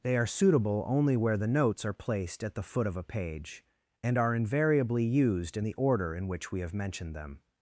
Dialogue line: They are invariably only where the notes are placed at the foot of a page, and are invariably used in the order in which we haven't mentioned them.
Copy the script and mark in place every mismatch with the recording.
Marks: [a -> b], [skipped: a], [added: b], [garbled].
They are [invariably -> suitable] only where the notes are placed at the foot of a page, and are invariably used in the order in which we [haven't -> have] mentioned them.